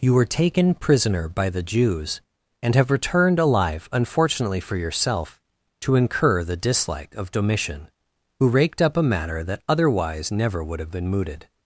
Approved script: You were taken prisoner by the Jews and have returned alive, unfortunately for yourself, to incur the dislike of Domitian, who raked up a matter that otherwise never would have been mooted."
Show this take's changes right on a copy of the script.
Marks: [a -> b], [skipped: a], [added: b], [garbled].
You were taken prisoner by the Jews and have returned alive, unfortunately for yourself, to incur the dislike of Domitian, who raked up a matter that otherwise never would have been mooted."